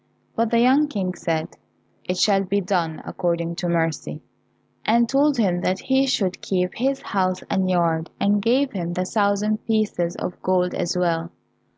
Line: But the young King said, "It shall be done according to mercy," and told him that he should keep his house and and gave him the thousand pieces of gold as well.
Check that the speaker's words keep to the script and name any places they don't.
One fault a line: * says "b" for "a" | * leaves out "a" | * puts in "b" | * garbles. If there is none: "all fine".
* puts in "yard"